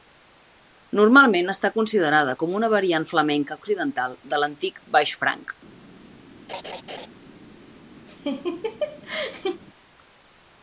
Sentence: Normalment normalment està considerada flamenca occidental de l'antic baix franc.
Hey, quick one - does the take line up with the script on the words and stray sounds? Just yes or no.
no